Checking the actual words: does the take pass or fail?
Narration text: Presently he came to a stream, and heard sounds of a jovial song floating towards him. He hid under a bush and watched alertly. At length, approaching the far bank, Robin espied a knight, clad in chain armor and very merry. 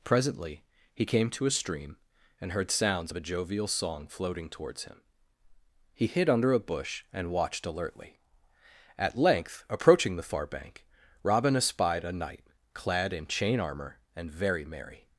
pass